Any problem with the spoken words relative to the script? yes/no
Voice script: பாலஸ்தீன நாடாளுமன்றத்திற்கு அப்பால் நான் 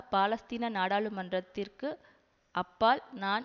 no